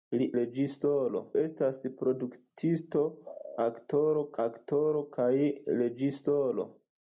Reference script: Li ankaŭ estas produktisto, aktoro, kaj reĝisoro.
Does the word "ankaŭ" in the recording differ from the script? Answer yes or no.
yes